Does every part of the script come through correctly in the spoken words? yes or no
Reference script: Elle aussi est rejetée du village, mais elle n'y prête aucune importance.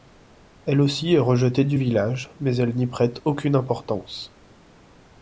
yes